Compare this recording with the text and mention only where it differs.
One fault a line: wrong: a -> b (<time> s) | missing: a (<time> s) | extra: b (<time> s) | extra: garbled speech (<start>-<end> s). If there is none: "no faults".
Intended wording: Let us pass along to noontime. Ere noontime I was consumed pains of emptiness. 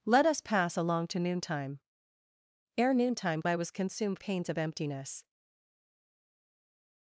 no faults